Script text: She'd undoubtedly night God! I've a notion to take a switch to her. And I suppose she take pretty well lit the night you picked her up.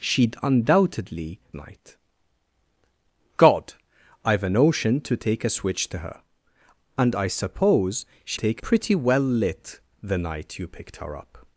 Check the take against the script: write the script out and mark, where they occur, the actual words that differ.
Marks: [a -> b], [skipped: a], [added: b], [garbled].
She'd undoubtedly night God! I've a notion to take a switch to her. And I suppose she take pretty well lit the night you picked her up.